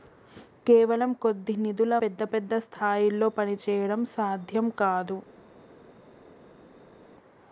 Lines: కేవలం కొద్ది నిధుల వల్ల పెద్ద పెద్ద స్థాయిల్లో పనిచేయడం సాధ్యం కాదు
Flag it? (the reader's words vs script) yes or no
yes